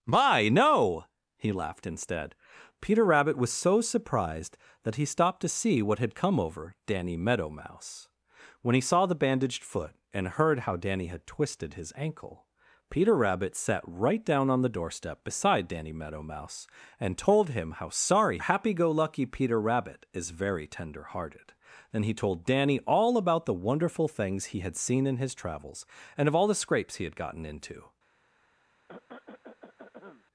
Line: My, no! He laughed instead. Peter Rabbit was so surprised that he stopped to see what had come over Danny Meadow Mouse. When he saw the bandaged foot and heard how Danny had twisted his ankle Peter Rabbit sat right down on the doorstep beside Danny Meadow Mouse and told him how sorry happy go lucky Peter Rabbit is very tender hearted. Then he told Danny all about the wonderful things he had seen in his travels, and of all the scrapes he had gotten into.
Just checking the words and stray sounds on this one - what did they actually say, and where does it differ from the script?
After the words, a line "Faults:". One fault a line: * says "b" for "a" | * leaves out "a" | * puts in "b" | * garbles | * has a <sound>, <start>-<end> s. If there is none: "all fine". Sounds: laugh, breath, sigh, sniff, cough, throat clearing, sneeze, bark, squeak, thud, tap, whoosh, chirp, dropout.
My, no! He laughed instead. Peter Rabbit was so surprised that he stopped to see what had come over Danny Meadow Mouse. When he saw the bandaged foot and heard how Danny had twisted his ankle Peter Rabbit sat right down on the doorstep beside Danny Meadow Mouse and told him how sorry happy go lucky Peter Rabbit is very tender hearted. Then he told Danny all about the wonderful things he had seen in his travels, and of all the scrapes he had gotten into.
Faults:
* has a cough, 28.9-30.2 s